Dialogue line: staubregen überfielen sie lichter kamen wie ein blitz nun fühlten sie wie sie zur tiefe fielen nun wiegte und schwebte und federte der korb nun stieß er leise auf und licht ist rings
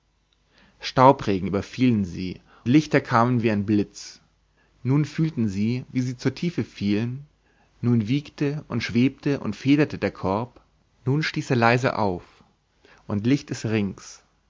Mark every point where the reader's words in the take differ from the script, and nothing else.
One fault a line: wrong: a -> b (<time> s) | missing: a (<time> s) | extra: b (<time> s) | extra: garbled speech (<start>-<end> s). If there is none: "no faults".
no faults